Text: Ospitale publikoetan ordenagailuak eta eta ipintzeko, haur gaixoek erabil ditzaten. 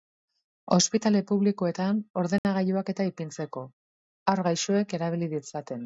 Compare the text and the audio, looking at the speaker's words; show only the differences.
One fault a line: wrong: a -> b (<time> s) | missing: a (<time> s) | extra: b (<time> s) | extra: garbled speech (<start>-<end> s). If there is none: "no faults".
missing: eta (3.1 s)